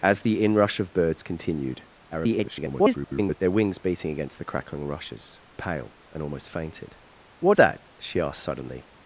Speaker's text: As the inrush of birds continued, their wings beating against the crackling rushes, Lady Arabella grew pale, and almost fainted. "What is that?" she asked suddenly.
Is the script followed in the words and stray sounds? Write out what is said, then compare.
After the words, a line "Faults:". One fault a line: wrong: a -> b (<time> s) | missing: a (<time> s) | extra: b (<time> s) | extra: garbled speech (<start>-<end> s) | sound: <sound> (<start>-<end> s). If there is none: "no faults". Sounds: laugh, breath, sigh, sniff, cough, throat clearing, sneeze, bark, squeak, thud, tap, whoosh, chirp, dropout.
As the inrush of birds continued, [garbled] their wings beating against the crackling rushes, Pale, and almost fainted. "What that?" she asked suddenly.
Faults:
extra: garbled speech (2.1-3.4 s)
missing: Lady Arabella grew (5.4 s)
missing: is (7.6 s)